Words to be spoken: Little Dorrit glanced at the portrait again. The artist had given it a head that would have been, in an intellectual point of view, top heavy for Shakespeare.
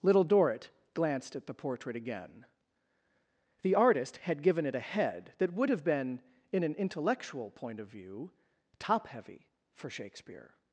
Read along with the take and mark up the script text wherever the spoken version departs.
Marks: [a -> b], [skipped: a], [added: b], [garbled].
Little Dorrit glanced at the portrait again. The artist had given it a head that would have been, in an intellectual point of view, top heavy for Shakespeare.